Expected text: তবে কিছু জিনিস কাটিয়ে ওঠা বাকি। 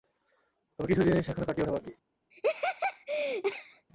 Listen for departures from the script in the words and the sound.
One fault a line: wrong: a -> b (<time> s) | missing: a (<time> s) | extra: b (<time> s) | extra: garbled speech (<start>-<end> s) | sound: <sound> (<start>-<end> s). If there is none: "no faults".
extra: এখনো (1.3 s)
sound: laugh (2.3-3.9 s)